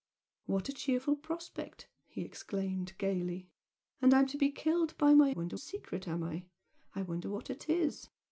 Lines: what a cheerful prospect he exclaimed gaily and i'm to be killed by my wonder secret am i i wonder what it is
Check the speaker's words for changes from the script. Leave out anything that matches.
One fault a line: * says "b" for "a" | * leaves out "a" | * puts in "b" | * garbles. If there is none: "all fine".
all fine